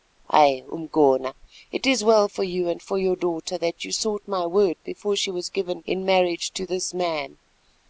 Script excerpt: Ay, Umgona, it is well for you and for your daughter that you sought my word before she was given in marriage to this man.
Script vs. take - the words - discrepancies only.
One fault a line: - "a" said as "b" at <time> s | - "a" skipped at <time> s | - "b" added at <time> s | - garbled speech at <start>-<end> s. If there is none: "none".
none